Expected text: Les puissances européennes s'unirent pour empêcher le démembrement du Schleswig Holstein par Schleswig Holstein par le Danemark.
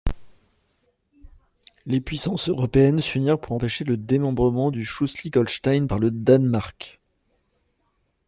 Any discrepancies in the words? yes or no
yes